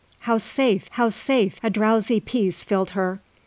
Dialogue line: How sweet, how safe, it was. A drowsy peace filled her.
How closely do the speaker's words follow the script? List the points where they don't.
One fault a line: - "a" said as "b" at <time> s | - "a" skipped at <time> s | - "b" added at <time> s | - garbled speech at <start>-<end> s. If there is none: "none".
- "sweet" said as "safe" at 0.4 s
- "it was" skipped at 1.6 s